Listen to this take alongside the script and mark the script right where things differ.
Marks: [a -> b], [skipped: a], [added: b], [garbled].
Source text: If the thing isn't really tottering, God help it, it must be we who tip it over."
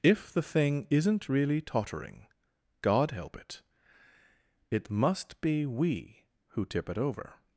If the thing isn't really tottering, God help it, it must be we who tip it over."